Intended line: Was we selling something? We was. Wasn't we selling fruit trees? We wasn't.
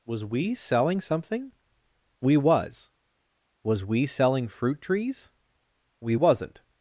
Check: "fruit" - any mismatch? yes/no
no